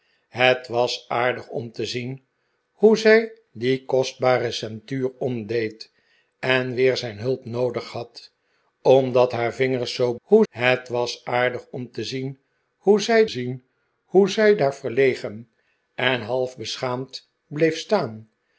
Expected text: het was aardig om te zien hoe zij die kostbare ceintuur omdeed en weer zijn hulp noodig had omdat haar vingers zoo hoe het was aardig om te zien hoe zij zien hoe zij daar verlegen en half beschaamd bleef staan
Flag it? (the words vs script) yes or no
no